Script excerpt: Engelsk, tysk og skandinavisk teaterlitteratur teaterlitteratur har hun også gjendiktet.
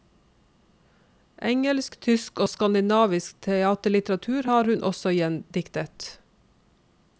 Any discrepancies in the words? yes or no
yes